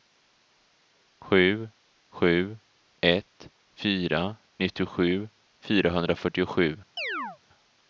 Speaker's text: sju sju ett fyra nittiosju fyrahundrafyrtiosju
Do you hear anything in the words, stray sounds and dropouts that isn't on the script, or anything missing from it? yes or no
yes